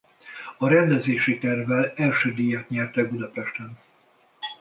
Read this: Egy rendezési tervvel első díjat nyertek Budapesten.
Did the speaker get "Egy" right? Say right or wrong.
wrong